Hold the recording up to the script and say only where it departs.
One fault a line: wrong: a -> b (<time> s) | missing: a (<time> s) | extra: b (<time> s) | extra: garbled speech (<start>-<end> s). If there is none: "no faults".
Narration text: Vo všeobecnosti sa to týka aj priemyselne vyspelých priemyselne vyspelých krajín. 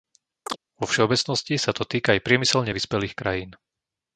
missing: priemyselne vyspelých (3.2 s)